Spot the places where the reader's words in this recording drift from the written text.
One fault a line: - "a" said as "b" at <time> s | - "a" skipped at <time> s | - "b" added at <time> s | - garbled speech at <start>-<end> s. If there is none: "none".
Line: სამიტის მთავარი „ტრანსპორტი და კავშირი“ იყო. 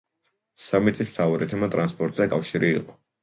- "თემა" added at 1.5 s